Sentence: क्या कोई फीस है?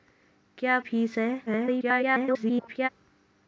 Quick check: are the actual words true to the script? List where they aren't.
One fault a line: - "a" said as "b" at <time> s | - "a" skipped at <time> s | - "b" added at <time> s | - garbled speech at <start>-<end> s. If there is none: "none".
- "कोई" skipped at 0.8 s
- garbled speech at 1.5-2.9 s